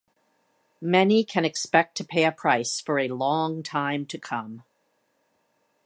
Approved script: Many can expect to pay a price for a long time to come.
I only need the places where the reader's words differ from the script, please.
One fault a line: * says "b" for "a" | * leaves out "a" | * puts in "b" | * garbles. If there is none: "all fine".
all fine